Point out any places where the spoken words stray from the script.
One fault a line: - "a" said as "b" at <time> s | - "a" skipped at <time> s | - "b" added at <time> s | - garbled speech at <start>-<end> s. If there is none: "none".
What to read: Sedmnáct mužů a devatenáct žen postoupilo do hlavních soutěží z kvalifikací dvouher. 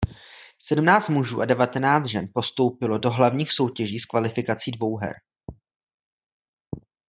none